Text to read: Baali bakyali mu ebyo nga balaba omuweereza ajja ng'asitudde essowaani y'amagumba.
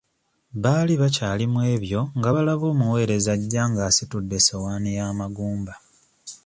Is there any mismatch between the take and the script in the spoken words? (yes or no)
no